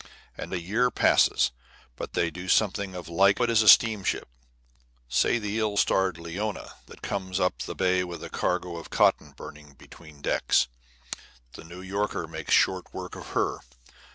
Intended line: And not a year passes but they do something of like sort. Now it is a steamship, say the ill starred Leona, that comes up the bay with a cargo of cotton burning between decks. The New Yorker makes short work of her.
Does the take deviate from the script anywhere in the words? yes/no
yes